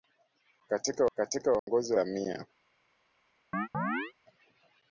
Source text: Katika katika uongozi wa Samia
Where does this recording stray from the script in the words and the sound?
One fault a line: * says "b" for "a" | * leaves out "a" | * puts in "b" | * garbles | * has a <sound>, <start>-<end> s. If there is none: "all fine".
* has a dropout, 1.6-1.7 s
* has a chirp, 3.5-4.1 s